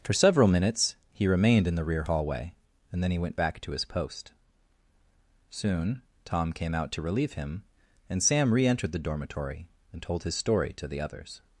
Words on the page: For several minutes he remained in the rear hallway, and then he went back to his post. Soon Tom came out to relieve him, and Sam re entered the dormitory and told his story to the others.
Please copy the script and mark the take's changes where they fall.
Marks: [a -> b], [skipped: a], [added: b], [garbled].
For several minutes he remained in the rear hallway, and then he went back to his post. Soon Tom came out to relieve him, and Sam re entered the dormitory and told his story to the others.